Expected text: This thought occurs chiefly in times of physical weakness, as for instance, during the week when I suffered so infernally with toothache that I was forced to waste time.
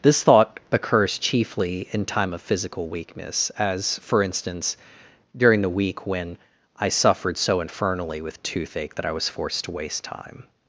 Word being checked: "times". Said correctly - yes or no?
no